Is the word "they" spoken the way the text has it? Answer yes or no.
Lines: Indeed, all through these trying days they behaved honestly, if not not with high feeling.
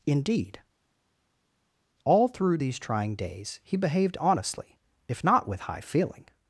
no